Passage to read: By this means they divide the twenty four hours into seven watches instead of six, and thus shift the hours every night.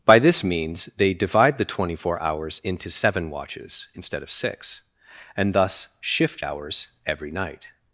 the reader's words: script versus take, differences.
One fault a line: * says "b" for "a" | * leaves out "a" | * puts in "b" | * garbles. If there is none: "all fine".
* leaves out "the"